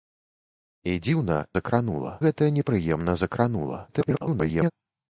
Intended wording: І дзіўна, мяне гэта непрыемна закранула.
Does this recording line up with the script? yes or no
no